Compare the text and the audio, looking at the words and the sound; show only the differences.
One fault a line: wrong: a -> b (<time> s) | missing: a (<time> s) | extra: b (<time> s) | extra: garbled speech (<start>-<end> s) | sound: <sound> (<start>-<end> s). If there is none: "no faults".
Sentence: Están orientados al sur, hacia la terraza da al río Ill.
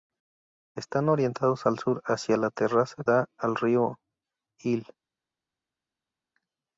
no faults